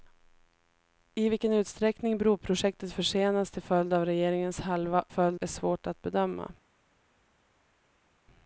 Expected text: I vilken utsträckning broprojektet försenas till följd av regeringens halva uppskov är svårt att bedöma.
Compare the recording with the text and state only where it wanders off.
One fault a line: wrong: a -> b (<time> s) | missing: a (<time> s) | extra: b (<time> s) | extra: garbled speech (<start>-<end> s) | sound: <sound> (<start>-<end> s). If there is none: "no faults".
wrong: uppskov -> följd (5.1 s)